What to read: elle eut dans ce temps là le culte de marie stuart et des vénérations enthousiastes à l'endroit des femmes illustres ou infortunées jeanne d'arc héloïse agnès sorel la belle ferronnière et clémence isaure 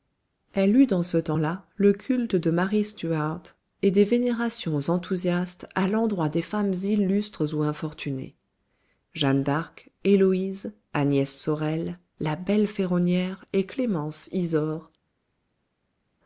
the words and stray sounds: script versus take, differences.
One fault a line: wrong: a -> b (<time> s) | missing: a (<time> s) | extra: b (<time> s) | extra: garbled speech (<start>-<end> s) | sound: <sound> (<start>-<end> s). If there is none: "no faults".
no faults